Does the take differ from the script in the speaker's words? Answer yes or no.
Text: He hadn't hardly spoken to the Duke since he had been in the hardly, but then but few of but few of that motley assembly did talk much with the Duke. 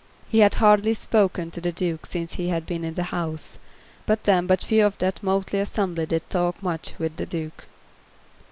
yes